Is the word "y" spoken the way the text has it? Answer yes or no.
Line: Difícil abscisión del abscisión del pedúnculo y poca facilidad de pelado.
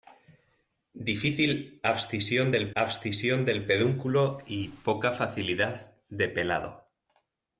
yes